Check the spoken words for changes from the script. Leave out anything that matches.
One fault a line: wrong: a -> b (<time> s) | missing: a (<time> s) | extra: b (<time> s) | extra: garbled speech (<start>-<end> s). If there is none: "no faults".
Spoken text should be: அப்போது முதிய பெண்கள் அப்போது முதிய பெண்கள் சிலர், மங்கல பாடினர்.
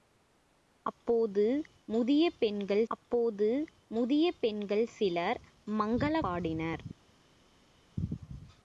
no faults